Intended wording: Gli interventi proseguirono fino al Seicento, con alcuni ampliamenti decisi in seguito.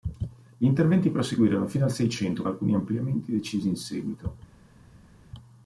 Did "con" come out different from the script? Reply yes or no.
yes